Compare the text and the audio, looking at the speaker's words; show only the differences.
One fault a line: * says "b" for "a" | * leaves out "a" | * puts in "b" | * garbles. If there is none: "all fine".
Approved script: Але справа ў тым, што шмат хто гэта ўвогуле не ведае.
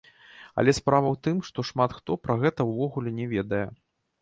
* puts in "пра"